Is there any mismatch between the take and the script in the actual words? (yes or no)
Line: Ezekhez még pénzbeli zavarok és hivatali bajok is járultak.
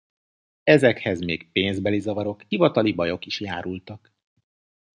yes